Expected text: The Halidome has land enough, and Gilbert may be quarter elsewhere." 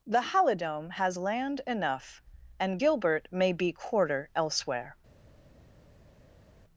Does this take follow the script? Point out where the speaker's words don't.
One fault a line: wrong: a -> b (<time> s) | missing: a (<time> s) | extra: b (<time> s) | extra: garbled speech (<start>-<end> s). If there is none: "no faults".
no faults